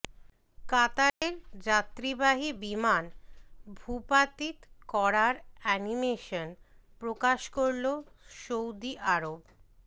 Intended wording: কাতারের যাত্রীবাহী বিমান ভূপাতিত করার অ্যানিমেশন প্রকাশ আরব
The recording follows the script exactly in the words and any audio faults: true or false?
false